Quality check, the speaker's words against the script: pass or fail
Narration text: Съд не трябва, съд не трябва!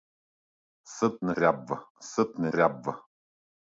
pass